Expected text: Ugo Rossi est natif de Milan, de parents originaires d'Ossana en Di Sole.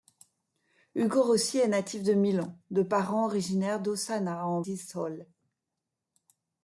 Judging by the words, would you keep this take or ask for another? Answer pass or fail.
pass